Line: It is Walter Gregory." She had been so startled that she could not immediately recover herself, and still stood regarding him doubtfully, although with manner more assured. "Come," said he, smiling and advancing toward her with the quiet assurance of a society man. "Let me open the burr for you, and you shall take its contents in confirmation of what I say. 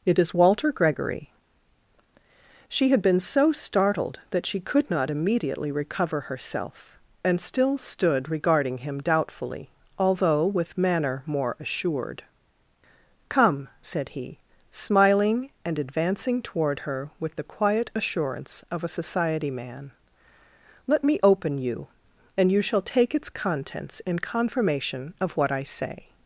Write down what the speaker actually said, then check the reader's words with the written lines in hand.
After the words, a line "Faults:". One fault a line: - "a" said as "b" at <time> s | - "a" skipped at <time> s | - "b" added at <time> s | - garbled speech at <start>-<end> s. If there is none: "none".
It is Walter Gregory." She had been so startled that she could not immediately recover herself, and still stood regarding him doubtfully, although with manner more assured. "Come," said he, smiling and advancing toward her with the quiet assurance of a society man. "Let me open you, and you shall take its contents in confirmation of what I say.
Faults:
- "the burr for" skipped at 21.6 s